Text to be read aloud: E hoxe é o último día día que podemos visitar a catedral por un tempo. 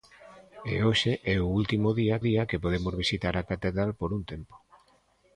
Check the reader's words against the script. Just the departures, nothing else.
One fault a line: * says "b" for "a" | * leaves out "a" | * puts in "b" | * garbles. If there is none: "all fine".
all fine